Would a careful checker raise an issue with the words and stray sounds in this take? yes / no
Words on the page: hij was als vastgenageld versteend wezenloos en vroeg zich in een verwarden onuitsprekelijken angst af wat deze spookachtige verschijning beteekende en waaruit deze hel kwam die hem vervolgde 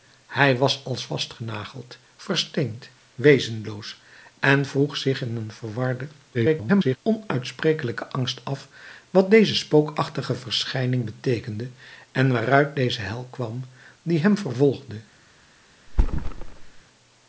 yes